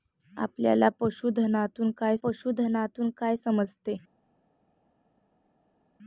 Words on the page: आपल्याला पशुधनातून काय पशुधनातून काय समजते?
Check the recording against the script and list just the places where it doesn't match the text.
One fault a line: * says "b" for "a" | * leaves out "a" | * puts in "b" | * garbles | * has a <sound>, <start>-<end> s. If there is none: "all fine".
all fine